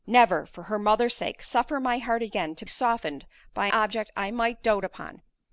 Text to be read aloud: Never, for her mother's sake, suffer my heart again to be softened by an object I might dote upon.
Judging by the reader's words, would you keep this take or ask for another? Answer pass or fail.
fail